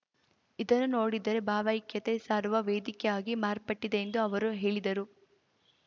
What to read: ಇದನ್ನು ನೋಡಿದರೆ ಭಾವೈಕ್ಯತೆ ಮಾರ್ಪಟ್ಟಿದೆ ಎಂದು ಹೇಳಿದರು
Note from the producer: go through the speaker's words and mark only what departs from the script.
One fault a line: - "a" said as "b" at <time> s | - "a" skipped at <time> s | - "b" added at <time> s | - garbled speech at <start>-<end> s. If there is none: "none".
- "ಸಾರುವ ವೇದಿಕೆಯಾಗಿ" added at 2.2 s
- "ಅವರು" added at 4.2 s